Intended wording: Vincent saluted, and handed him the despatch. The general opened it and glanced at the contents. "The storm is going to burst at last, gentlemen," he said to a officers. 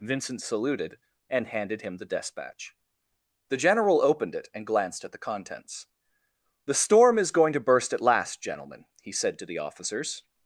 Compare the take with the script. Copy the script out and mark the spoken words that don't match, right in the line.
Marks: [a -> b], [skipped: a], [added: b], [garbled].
Vincent saluted, and handed him the despatch. The general opened it and glanced at the contents. "The storm is going to burst at last, gentlemen," he said to [a -> the] officers.